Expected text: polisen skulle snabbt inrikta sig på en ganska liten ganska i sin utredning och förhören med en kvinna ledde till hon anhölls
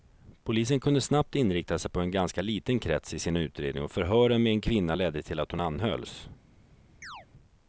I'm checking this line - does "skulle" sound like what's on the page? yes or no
no